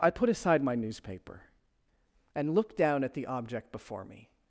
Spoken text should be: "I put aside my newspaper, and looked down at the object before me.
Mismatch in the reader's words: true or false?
false